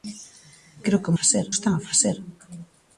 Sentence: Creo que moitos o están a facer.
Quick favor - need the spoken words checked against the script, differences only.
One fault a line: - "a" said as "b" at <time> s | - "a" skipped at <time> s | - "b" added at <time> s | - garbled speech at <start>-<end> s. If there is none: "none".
- "moitos" said as "facer" at 1.2 s